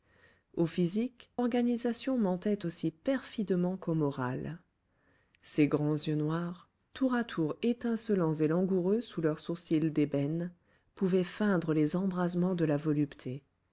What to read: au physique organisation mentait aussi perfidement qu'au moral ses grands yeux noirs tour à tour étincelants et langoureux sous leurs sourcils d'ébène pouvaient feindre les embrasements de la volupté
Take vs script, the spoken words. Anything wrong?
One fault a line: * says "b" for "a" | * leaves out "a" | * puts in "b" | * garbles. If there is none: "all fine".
all fine